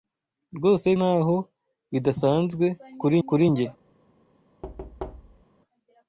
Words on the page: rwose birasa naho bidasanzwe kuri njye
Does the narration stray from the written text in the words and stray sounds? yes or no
yes